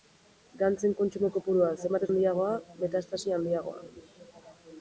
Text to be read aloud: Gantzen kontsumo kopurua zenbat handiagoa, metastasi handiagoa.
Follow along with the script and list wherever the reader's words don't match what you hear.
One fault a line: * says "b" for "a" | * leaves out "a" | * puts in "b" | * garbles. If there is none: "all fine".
all fine